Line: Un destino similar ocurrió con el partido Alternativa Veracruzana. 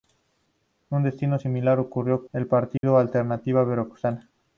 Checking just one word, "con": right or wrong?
wrong